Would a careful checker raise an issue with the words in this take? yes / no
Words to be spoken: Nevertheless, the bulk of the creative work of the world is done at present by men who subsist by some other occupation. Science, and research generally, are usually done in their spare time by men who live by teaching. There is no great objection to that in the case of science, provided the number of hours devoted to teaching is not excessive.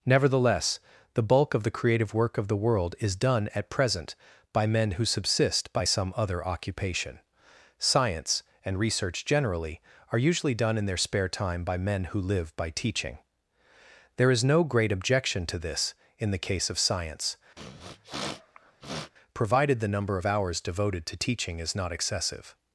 yes